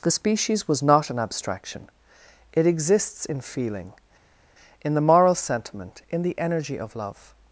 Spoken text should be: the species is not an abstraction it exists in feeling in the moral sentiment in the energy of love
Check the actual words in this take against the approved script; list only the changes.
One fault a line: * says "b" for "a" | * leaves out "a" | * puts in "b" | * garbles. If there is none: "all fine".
* says "was" for "is"